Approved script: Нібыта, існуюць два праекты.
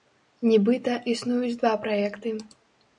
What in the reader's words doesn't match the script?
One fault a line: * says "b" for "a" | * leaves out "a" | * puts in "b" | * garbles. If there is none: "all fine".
all fine